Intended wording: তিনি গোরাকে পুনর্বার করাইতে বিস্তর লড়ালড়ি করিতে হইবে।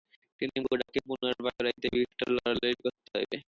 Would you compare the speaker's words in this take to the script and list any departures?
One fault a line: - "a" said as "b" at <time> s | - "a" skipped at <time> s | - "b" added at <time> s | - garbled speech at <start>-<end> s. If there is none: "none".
none